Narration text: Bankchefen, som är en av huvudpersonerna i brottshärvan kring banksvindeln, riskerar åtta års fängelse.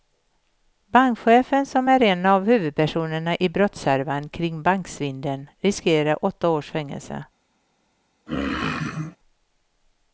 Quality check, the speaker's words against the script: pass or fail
pass